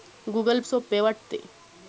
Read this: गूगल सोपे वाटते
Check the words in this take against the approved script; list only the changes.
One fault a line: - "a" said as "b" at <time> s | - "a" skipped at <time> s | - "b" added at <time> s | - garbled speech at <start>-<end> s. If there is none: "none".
none